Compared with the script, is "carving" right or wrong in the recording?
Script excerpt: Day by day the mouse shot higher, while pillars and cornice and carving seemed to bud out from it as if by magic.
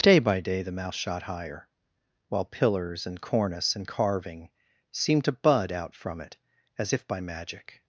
right